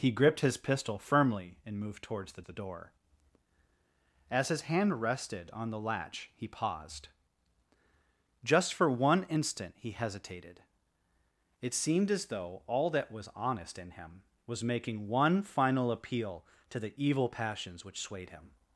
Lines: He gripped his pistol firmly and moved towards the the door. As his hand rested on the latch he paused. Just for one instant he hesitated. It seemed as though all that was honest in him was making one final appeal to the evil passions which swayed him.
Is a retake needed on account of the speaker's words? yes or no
no